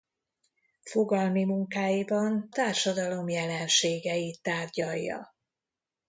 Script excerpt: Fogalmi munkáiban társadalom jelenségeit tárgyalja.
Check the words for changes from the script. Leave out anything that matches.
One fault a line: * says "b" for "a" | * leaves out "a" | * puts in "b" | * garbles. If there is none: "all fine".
all fine